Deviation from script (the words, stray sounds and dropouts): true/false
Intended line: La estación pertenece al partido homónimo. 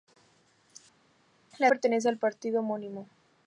true